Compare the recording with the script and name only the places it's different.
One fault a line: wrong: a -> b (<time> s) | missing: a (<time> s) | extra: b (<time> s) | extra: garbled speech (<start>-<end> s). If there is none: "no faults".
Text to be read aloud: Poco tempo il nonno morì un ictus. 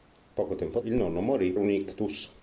no faults